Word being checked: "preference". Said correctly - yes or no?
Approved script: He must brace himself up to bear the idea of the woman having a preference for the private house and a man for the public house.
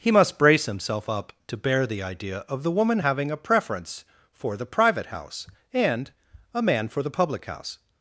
yes